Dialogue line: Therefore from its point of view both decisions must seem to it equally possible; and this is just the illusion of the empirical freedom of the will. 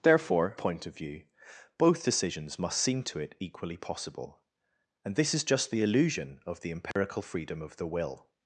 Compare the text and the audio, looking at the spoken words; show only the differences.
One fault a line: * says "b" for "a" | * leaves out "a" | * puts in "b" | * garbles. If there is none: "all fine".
* leaves out "from its"